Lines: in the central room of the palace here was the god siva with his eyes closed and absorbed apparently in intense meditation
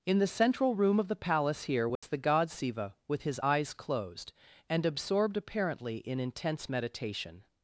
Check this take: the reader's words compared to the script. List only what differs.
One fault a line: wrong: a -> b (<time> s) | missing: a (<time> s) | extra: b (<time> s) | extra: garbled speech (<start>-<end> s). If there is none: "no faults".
no faults